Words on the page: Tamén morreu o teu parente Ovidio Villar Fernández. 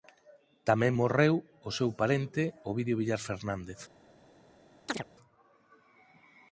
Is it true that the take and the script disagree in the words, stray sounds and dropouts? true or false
true